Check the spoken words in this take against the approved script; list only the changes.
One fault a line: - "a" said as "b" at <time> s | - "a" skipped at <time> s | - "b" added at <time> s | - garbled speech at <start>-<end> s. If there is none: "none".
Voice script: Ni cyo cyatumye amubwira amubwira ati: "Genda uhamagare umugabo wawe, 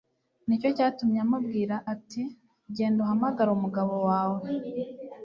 - "amubwira" skipped at 1.7 s